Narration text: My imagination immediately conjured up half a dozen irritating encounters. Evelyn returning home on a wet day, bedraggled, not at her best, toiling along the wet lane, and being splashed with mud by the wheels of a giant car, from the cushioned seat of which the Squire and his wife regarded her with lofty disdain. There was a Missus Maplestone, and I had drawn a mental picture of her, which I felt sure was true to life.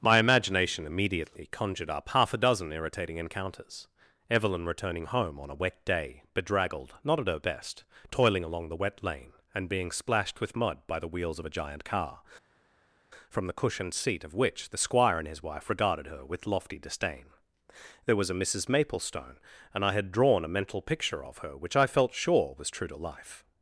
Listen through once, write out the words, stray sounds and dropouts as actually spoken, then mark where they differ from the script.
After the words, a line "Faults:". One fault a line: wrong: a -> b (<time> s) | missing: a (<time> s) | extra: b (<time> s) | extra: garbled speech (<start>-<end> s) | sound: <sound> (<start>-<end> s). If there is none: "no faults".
My imagination immediately conjured up half a dozen irritating encounters. Evelyn returning home on a wet day, bedraggled, not at her best, toiling along the wet lane, and being splashed with mud by the wheels of a giant car, from the cushioned seat of which the Squire and his wife regarded her with lofty disdain. There was a Missus Maplestone, and I had drawn a mental picture of her, which I felt sure was true to life.
Faults:
no faults